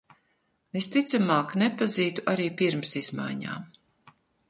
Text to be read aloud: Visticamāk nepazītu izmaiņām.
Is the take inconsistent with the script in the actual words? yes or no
yes